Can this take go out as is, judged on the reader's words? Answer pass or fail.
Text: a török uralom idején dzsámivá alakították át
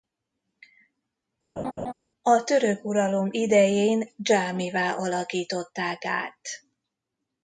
pass